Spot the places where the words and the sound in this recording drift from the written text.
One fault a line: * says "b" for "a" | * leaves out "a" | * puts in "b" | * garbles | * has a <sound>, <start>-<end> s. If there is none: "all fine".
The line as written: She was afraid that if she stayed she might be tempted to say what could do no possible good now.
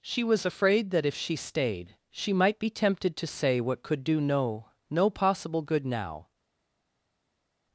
* puts in "no"